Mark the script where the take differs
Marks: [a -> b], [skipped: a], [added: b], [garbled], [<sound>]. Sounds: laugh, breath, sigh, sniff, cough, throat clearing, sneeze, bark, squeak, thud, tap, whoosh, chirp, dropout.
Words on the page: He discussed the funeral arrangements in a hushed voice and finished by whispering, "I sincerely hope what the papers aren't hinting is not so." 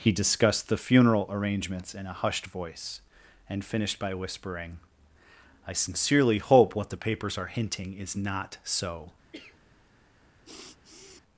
He discussed the funeral arrangements in a hushed voice and finished by whispering, "I sincerely hope what the papers [aren't -> are] hinting is not so." [cough] [sniff]